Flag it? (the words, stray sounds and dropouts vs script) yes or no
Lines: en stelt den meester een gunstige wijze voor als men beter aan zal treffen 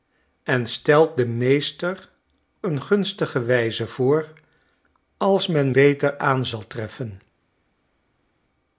no